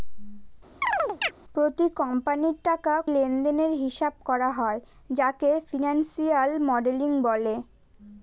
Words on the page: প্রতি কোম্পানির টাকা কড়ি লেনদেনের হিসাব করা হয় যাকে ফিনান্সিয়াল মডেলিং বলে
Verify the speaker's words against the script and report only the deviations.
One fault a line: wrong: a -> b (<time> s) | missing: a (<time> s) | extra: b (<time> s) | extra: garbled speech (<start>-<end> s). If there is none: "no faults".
missing: কড়ি (2.9 s)